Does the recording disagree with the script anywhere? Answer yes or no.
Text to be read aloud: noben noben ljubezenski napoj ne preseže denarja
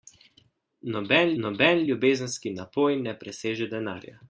no